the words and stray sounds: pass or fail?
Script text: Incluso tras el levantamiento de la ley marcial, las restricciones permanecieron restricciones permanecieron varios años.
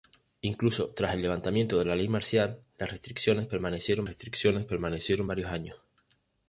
pass